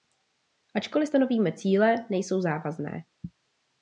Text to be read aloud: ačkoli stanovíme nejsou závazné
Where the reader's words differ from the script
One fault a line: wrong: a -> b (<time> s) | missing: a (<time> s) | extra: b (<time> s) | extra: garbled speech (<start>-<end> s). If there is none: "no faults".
extra: cíle (1.5 s)